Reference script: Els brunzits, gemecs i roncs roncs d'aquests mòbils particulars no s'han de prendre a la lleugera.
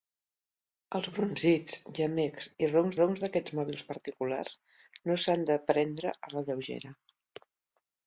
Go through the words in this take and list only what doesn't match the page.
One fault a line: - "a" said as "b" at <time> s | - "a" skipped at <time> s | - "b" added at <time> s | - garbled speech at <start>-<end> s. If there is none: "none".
none